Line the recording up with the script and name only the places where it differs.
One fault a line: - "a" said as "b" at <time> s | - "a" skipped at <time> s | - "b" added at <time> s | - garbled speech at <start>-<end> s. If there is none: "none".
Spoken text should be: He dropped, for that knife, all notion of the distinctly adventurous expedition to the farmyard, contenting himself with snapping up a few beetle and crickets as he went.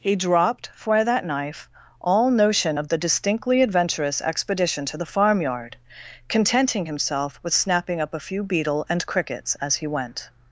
none